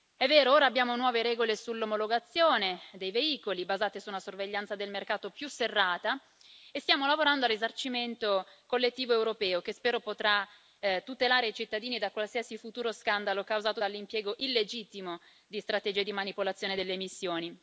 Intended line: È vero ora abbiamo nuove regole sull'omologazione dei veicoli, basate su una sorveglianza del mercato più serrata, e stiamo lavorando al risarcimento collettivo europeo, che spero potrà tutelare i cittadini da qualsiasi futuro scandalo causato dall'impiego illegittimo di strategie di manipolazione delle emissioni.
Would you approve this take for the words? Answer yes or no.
yes